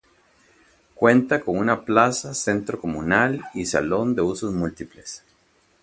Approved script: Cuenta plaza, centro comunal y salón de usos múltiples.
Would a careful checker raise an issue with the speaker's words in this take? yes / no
yes